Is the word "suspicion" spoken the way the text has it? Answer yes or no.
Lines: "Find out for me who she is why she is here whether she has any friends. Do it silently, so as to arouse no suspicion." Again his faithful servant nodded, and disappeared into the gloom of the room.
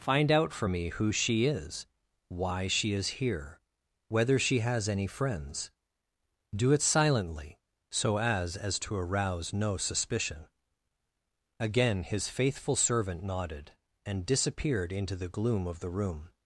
yes